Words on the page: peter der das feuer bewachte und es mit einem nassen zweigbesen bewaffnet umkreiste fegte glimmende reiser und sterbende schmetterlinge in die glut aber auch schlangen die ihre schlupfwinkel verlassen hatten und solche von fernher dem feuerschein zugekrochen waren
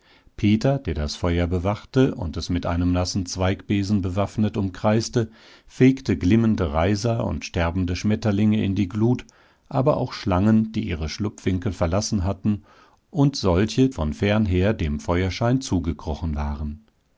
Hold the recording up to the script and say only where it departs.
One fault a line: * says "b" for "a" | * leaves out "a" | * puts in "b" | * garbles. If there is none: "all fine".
all fine